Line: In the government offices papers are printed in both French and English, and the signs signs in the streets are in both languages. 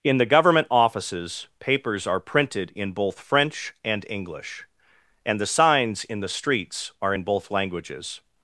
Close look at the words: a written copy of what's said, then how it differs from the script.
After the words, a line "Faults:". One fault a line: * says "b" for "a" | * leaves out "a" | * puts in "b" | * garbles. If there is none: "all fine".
In the government offices papers are printed in both French and English, and the signs in the streets are in both languages.
Faults:
* leaves out "signs"